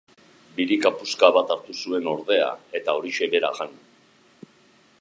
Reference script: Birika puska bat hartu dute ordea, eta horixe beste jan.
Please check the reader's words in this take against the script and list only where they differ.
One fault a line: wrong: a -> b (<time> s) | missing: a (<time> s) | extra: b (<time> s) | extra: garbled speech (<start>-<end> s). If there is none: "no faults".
wrong: dute -> zuen (1.8 s)
wrong: beste -> bera (3.4 s)